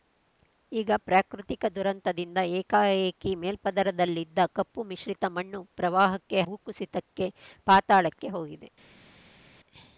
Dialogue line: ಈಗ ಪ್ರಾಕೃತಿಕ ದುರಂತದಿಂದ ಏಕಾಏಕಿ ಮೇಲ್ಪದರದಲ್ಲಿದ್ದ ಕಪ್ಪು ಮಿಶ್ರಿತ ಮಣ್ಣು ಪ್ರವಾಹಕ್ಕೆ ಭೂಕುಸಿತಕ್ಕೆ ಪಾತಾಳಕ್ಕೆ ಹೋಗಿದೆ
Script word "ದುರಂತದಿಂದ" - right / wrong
right